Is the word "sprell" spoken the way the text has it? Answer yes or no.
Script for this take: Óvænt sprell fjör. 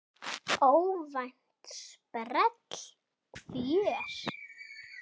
yes